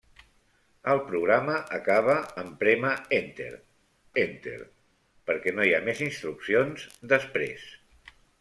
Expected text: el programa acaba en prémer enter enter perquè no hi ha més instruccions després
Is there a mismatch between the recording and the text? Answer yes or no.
no